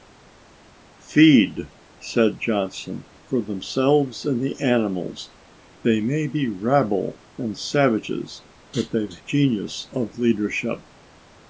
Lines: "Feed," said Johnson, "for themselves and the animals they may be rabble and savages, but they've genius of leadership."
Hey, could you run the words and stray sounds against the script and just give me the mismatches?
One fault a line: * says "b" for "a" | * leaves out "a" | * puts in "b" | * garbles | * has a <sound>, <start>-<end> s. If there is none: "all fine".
all fine